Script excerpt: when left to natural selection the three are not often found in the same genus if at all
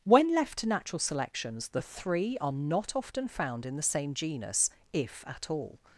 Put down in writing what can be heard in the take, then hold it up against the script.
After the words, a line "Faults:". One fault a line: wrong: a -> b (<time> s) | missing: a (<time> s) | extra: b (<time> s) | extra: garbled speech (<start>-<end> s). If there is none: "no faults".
when left to natural selections the three are not often found in the same genus if at all
Faults:
wrong: selection -> selections (1.0 s)